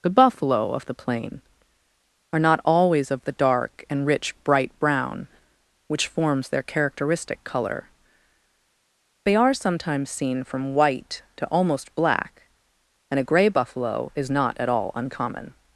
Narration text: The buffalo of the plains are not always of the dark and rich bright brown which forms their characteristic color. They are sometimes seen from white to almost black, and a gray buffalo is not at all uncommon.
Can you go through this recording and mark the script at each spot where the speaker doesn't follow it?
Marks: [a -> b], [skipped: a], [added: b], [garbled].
The buffalo of the [plains -> plain] are not always of the dark and rich bright brown which forms their characteristic color. They are sometimes seen from white to almost black, and a gray buffalo is not at all uncommon.